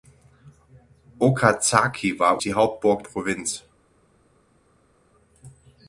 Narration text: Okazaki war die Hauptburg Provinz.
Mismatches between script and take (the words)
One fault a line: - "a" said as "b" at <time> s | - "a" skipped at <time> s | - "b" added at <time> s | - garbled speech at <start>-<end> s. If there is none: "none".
none